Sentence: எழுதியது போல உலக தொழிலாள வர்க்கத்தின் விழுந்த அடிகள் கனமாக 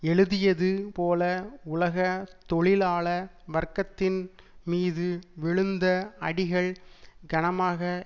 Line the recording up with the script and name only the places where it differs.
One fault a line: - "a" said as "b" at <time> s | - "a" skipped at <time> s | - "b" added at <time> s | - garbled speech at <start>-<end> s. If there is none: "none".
- "மீது" added at 4.6 s